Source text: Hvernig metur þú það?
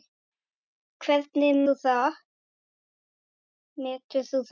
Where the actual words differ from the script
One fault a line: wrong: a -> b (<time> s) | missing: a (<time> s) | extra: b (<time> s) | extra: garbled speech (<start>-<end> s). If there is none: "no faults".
missing: metur (1.6 s)